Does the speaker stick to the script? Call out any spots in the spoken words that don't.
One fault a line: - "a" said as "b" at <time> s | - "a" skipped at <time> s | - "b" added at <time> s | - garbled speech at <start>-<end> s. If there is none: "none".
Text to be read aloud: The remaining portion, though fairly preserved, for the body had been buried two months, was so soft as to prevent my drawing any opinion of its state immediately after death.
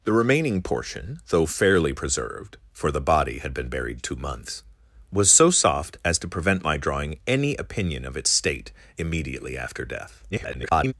- garbled speech at 10.3-10.9 s